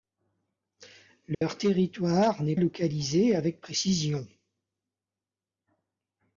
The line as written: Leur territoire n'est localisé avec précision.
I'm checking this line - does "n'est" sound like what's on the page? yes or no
yes